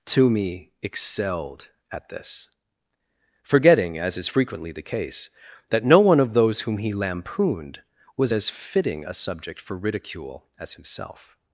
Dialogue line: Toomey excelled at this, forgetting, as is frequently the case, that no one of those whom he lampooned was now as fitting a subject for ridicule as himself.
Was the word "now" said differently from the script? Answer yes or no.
yes